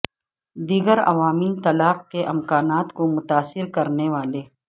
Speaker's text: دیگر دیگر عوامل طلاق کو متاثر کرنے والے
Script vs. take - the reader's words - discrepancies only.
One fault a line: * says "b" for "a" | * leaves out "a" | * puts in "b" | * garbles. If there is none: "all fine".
* leaves out "دیگر"
* puts in "کے امکانات"